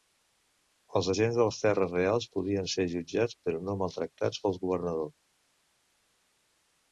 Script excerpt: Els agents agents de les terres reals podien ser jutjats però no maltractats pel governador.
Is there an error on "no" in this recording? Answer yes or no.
no